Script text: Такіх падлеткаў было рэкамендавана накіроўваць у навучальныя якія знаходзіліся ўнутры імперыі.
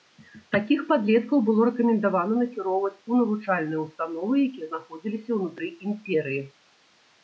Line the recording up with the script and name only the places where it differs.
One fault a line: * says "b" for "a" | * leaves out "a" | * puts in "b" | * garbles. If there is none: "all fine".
* puts in "ўстановы"